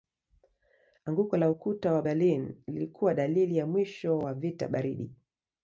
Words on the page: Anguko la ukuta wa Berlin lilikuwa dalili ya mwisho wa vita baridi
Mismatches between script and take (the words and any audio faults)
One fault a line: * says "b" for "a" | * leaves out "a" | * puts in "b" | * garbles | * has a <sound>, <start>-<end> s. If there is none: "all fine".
all fine